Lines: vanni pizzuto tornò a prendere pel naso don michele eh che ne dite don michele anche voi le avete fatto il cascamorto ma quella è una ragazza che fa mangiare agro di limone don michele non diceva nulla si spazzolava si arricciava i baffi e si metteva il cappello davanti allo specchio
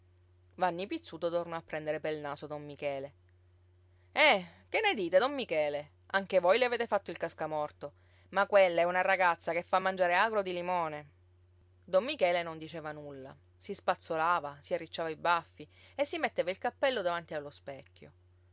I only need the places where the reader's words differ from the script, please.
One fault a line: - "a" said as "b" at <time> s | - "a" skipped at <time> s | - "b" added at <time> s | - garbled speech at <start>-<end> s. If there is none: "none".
none